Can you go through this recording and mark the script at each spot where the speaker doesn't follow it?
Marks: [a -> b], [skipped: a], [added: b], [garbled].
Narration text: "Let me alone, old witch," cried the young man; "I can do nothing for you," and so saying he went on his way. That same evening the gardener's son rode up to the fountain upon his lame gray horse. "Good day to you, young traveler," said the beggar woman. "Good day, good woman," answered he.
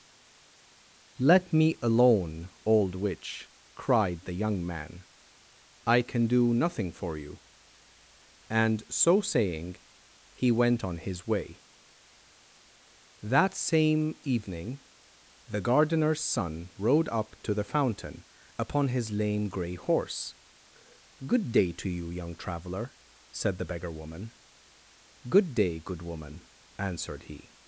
"Let me alone, old witch," cried the young man; "I can do nothing for you," and so saying he went on his way. That same evening the gardener's son rode up to the fountain upon his lame gray horse. "Good day to you, young traveler," said the beggar woman. "Good day, good woman," answered he.